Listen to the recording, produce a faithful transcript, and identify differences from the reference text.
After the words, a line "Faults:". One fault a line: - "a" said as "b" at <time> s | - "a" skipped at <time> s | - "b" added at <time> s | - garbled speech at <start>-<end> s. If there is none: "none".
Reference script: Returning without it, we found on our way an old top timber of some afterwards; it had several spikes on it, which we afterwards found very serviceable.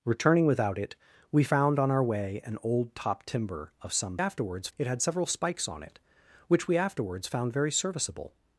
Returning without it, we found on our way an old top timber of some afterwards; it had several spikes on it, which we afterwards found very serviceable.
Faults:
none